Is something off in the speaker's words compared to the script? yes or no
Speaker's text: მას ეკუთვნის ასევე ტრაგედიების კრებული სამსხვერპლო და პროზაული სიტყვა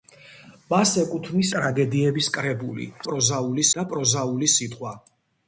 yes